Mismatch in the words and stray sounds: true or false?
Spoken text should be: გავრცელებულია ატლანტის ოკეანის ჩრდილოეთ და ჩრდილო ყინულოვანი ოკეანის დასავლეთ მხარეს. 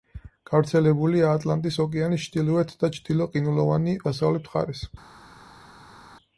true